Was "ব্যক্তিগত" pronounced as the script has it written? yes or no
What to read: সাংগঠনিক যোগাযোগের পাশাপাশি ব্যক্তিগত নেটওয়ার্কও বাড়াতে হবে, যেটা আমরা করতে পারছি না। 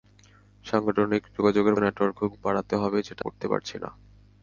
no